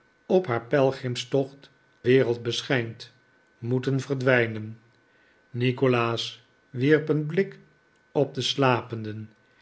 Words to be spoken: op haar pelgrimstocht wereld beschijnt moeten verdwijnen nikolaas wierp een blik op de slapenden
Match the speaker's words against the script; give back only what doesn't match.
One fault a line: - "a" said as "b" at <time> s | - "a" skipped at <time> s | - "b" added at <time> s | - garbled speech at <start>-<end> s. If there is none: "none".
none